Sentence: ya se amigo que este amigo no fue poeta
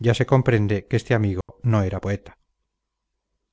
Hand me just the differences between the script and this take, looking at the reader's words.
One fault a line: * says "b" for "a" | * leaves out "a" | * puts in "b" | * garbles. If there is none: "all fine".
* says "comprende" for "amigo"
* says "era" for "fue"